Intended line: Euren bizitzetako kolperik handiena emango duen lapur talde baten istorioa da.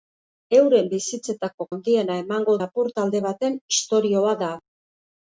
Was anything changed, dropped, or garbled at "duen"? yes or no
yes